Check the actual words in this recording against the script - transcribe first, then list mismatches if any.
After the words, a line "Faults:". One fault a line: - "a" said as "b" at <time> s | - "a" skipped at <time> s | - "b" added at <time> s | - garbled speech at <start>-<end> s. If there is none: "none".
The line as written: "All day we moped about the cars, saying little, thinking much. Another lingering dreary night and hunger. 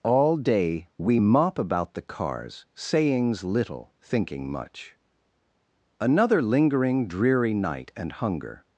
"All day we mop about the cars, sayings little, thinking much. Another lingering dreary night and hunger.
Faults:
- "moped" said as "mop" at 1.2 s
- "saying" said as "sayings" at 2.7 s